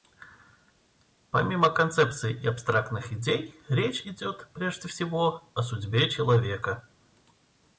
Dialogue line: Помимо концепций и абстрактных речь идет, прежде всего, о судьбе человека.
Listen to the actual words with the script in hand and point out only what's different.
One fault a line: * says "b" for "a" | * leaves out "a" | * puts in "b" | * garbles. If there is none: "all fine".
* puts in "идей"